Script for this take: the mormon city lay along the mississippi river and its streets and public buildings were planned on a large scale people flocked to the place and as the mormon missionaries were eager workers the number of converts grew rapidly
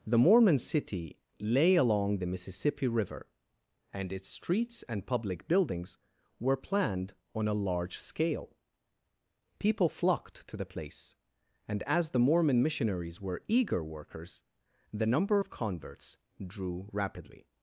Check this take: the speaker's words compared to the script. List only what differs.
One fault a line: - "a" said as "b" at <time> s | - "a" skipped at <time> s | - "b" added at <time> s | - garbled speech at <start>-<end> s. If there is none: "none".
- "grew" said as "drew" at 16.5 s